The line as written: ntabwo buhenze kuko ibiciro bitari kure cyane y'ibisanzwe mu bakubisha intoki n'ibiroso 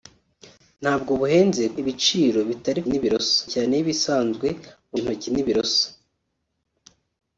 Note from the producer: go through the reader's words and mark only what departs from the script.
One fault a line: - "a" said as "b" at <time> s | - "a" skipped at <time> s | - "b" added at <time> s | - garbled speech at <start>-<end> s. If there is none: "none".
- "kuko" skipped at 1.6 s
- "kure" said as "n'ibiroso" at 2.9 s
- "bakubisha" skipped at 5.0 s